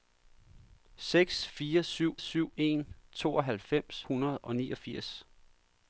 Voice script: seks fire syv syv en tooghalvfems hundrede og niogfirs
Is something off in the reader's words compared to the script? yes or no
no